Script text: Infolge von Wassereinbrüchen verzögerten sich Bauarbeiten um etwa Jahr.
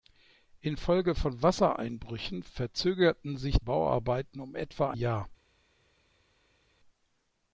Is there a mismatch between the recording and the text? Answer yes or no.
no